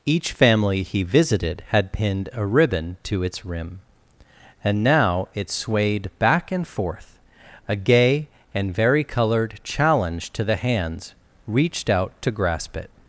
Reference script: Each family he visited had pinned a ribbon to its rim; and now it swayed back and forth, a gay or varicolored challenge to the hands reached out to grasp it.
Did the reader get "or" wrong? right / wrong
wrong